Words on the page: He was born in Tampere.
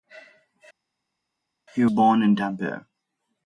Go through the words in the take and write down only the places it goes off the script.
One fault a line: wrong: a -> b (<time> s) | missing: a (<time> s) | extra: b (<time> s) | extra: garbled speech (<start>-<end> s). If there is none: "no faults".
missing: was (1.9 s)